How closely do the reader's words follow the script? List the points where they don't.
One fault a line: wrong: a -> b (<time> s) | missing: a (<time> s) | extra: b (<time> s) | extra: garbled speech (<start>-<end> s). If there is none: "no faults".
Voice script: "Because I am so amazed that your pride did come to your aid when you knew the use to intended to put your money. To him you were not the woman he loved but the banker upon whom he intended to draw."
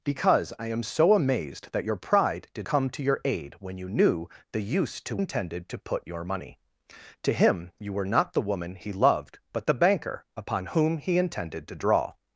no faults